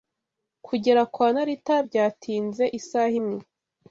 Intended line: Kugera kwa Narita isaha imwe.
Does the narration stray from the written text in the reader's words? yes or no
yes